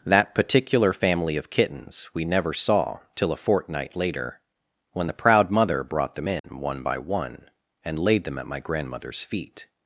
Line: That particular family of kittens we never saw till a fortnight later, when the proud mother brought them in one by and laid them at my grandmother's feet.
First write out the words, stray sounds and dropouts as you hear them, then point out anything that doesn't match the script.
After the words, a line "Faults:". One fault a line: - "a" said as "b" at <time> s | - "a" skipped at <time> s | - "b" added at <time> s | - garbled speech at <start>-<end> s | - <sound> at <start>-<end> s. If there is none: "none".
That particular family of kittens we never saw till a fortnight later, when the proud mother brought them in one by one, and laid them at my grandmother's feet.
Faults:
- dropout at 6.4-6.4 s
- "one" added at 7.0 s